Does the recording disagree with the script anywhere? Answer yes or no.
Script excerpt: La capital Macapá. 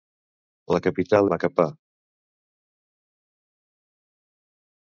no